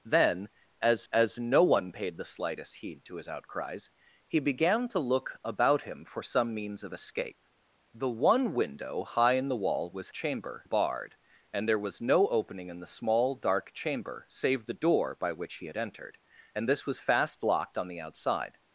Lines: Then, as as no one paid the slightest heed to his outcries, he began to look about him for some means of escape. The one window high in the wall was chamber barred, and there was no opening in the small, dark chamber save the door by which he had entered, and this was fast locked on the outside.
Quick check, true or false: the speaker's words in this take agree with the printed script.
true